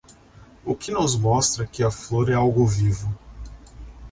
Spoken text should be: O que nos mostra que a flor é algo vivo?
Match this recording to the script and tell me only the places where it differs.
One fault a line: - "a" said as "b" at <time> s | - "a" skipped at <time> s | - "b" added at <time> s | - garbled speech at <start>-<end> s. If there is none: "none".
none